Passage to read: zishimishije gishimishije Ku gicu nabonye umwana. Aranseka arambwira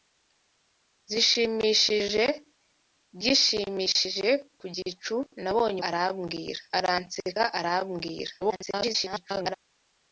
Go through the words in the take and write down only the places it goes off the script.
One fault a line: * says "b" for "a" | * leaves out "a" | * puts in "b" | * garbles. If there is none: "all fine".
* says "arambwira" for "umwana"
* garbles